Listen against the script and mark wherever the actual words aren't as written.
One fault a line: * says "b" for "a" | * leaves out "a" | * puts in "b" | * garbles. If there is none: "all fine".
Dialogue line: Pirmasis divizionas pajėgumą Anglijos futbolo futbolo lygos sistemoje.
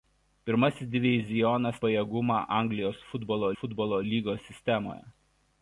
all fine